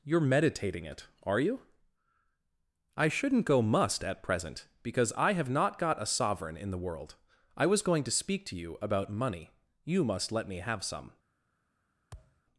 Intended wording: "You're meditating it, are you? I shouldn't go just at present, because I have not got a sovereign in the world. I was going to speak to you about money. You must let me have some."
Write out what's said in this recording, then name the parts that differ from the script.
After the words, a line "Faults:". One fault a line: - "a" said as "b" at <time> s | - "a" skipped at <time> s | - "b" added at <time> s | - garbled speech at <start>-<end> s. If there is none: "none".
"You're meditating it, are you? I shouldn't go must at present, because I have not got a sovereign in the world. I was going to speak to you about money. You must let me have some."
Faults:
- "just" said as "must" at 3.6 s